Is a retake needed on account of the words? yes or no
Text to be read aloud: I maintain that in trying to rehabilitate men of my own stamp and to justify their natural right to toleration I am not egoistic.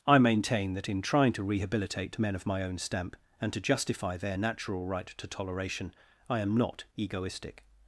no